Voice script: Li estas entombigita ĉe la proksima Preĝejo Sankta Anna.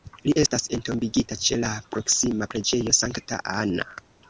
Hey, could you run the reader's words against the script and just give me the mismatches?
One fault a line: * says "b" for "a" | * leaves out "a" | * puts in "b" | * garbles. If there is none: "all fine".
all fine